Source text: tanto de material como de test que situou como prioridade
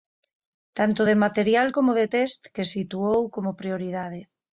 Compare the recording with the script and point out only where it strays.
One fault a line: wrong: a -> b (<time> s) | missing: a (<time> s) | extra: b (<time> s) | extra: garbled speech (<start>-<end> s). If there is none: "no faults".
no faults